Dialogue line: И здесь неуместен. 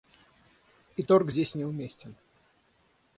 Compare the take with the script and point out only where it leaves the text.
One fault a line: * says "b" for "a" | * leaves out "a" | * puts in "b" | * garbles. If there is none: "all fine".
* puts in "торг"